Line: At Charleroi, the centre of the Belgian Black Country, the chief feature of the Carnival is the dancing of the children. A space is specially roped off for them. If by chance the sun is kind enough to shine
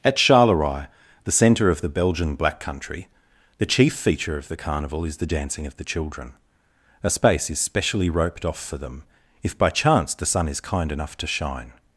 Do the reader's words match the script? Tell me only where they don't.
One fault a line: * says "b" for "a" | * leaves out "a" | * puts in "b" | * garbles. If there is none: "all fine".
all fine